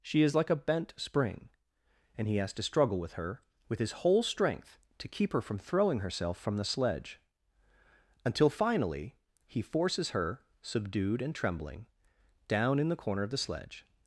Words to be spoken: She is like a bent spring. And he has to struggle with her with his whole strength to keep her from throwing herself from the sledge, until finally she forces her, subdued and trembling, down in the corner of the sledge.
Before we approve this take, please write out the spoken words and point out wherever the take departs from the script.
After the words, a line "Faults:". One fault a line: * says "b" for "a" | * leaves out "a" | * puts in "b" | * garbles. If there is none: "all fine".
She is like a bent spring. And he has to struggle with her with his whole strength to keep her from throwing herself from the sledge, until finally he forces her, subdued and trembling, down in the corner of the sledge.
Faults:
* says "he" for "she"